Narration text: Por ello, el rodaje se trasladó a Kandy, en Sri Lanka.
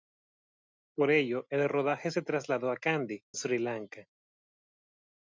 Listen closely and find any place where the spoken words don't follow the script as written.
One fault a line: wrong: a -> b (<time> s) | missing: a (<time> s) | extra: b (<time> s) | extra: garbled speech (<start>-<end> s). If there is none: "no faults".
missing: en (3.2 s)